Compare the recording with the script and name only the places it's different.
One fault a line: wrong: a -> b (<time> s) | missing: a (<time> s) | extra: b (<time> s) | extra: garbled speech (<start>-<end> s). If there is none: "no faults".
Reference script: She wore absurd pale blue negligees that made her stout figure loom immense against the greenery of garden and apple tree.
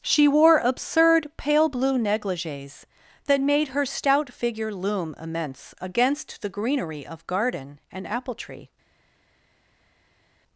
no faults